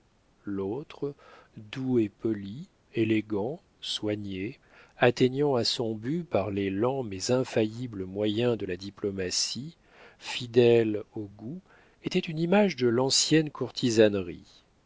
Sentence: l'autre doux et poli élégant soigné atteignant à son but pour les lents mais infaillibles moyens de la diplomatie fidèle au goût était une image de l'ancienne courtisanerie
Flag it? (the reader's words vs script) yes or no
yes